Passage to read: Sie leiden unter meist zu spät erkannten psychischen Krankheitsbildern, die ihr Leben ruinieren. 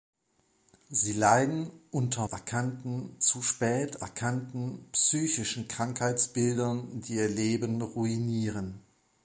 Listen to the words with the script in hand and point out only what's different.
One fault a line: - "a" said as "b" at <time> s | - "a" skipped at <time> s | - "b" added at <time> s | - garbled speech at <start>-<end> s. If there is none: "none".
- "meist" said as "erkannten" at 2.2 s